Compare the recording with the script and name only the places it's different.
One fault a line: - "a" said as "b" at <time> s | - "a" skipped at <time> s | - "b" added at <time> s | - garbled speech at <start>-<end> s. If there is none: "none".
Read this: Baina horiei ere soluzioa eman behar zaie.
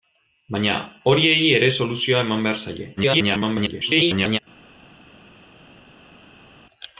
- garbled speech at 3.0-4.4 s